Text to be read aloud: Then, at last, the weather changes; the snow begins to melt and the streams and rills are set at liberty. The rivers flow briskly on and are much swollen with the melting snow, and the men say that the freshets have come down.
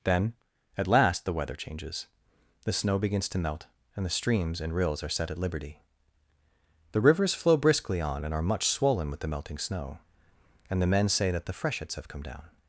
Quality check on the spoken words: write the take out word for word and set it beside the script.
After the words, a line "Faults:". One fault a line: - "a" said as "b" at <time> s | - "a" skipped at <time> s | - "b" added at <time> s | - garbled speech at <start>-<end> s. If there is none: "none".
Then, at last, the weather changes; the snow begins to melt and the streams and rills are set at liberty. The rivers flow briskly on and are much swollen with the melting snow, and the men say that the freshets have come down.
Faults:
none